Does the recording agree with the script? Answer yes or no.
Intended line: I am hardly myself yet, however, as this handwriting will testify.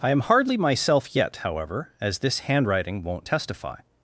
no